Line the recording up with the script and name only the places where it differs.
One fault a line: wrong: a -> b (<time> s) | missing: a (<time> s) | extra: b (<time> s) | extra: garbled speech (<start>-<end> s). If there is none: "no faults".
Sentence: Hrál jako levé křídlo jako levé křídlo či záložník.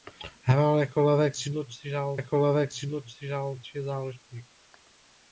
no faults